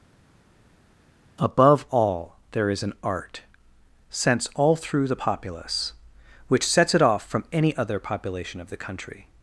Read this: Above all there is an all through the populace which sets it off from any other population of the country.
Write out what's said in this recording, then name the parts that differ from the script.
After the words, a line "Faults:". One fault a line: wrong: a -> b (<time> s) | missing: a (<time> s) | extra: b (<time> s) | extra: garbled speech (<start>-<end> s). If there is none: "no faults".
Above all there is an art sense all through the populace which sets it off from any other population of the country.
Faults:
extra: art sense (3.0 s)